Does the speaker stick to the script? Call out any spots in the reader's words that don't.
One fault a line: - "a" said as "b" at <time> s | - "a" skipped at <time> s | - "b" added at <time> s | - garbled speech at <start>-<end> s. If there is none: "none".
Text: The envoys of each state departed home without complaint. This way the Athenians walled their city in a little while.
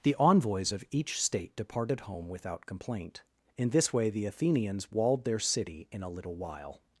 - "In" added at 3.6 s